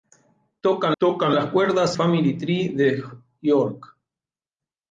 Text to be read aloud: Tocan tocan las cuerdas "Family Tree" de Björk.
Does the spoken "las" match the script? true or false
true